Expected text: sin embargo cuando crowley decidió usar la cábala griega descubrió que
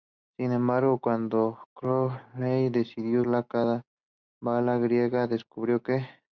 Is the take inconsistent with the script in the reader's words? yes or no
yes